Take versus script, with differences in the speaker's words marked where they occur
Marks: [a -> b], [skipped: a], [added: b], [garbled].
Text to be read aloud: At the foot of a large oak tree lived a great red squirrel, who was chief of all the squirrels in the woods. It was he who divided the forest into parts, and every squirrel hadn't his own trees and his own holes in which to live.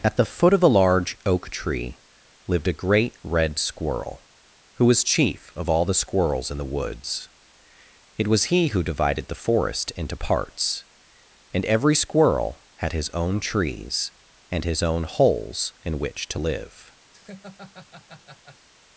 At the foot of a large oak tree lived a great red squirrel, who was chief of all the squirrels in the woods. It was he who divided the forest into parts, and every squirrel [hadn't -> had] his own trees and his own holes in which to live.